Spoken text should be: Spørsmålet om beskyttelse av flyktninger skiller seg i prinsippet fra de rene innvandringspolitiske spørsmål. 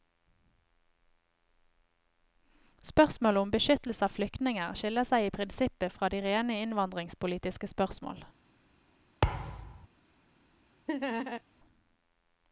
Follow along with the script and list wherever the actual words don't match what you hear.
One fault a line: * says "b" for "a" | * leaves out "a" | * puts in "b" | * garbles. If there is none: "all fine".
all fine